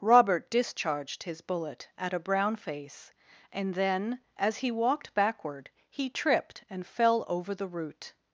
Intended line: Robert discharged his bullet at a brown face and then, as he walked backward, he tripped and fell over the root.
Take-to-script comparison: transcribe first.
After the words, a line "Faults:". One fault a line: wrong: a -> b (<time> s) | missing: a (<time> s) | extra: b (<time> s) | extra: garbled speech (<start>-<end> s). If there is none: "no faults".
Robert discharged his bullet at a brown face and then, as he walked backward, he tripped and fell over the root.
Faults:
no faults